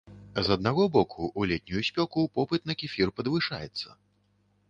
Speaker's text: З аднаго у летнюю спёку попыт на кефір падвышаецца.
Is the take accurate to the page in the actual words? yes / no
no